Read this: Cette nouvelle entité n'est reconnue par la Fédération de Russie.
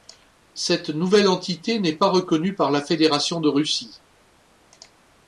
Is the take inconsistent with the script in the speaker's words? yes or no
yes